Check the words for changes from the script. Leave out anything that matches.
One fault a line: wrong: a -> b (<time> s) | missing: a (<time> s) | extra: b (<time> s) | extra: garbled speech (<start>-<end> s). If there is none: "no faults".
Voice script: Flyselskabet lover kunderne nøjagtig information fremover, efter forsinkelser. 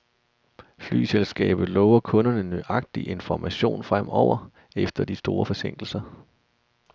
extra: de store (5.0 s)